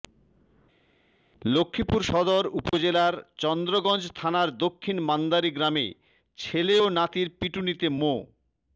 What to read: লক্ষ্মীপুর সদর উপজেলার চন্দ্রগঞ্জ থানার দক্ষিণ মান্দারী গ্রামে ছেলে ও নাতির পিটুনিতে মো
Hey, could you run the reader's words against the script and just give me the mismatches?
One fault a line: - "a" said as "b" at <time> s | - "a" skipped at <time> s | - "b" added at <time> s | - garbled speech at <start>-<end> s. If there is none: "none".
none